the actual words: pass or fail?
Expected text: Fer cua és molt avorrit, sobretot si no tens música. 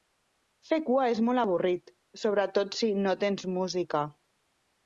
pass